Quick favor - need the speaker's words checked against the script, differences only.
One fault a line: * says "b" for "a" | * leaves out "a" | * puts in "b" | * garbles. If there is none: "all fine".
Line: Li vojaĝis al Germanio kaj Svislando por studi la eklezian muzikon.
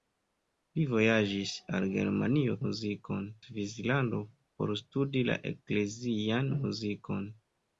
* says "muzikon" for "kaj"